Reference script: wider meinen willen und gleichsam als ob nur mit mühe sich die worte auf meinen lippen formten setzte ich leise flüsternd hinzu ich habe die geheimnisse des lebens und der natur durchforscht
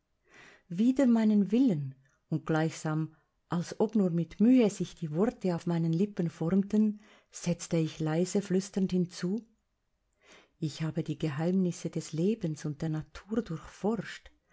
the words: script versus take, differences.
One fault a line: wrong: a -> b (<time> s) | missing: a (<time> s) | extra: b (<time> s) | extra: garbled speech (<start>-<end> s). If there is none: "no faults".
no faults